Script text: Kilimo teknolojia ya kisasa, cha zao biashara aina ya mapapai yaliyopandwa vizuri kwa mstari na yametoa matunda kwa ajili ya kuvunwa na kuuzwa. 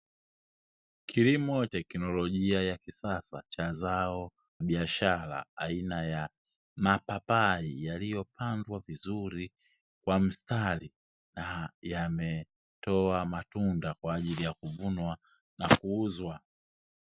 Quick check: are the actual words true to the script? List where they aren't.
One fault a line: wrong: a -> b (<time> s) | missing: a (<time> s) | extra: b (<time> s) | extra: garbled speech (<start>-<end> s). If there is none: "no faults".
no faults